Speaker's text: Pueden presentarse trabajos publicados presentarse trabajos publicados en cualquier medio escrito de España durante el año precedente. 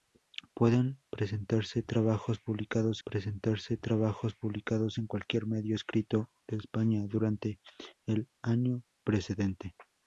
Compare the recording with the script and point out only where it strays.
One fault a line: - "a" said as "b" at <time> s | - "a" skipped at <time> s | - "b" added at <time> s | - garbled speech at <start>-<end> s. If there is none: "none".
none